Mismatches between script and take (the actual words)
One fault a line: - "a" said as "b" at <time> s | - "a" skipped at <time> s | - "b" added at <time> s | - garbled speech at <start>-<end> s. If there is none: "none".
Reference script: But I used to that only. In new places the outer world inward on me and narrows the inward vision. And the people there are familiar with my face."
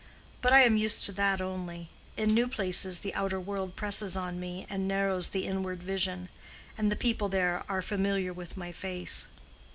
- "am" added at 0.6 s
- "inward" said as "presses" at 3.8 s